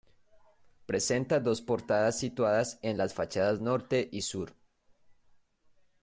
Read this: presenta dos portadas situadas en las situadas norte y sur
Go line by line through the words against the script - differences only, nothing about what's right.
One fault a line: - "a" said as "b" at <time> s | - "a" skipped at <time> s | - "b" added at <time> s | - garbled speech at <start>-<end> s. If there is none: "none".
- "situadas" said as "fachadas" at 3.1 s